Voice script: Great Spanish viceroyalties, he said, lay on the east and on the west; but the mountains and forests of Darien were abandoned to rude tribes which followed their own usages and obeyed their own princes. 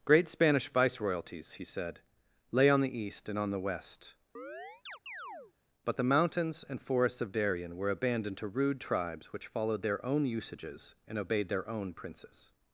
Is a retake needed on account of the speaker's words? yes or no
no